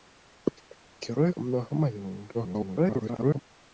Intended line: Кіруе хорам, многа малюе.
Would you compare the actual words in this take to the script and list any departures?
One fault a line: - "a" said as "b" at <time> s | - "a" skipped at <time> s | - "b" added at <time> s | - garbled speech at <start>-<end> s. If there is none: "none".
- "хорам" skipped at 1.3 s
- garbled speech at 2.3-3.4 s